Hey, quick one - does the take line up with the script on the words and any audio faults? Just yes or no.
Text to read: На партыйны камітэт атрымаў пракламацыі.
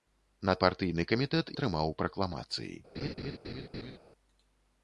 no